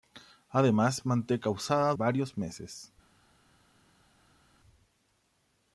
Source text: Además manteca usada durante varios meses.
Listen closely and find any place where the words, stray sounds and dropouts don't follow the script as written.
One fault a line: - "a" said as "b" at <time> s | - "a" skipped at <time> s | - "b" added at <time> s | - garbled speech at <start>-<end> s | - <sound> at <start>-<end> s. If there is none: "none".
- "durante" skipped at 1.9 s